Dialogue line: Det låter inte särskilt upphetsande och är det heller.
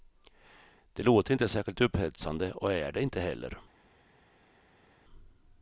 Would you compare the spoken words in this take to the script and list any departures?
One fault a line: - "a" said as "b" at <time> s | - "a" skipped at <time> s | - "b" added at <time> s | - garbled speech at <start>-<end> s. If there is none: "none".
- "inte" added at 3.0 s